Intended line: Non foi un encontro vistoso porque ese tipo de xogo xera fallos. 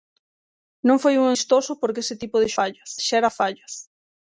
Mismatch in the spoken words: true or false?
true